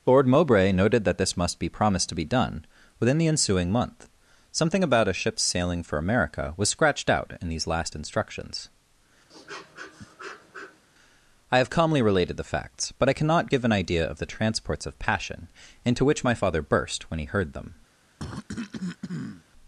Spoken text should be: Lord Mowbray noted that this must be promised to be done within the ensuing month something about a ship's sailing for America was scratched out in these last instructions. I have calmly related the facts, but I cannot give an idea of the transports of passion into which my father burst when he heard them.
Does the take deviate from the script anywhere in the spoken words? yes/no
no